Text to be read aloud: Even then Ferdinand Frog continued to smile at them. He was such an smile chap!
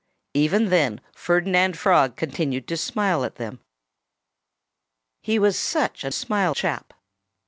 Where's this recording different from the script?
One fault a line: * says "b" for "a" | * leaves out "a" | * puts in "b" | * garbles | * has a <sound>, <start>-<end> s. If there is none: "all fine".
all fine